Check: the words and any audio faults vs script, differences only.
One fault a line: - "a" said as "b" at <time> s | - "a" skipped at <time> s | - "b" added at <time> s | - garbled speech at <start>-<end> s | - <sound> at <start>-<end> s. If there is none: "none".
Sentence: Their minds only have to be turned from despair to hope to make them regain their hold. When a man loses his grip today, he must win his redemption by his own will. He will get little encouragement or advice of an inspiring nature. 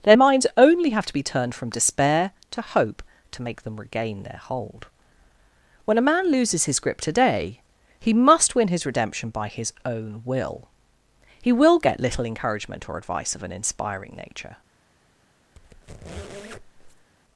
- squeak at 15.6-17.1 s